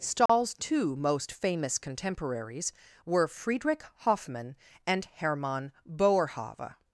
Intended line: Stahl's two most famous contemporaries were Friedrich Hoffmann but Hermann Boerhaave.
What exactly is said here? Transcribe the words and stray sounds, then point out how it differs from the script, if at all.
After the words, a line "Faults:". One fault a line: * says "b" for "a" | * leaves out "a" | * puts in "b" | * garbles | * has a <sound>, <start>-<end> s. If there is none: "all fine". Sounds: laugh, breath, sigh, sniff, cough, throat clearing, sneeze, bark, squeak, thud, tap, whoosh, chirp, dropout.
Stahl's two most famous contemporaries were Friedrich Hoffmann and Hermann Boerhaave.
Faults:
* has a dropout, 0.3-0.3 s
* says "and" for "but"